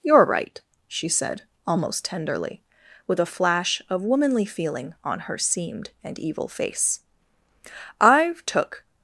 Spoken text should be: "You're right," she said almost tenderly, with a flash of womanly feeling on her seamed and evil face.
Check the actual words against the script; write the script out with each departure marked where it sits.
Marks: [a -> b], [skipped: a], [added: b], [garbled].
"You're right," she said almost tenderly, with a flash of womanly feeling on her seamed and evil face. [added: I've took]